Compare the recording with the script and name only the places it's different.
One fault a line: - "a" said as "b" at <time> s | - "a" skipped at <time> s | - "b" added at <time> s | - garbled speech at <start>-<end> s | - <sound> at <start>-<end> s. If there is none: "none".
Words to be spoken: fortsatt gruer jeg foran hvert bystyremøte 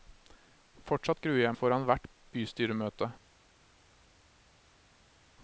none